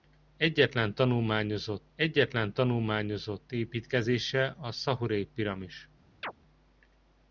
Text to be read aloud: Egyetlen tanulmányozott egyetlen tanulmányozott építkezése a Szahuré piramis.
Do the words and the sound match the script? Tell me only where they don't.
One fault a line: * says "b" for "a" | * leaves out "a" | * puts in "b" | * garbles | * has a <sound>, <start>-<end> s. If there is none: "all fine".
* has a chirp, 6.2-6.3 s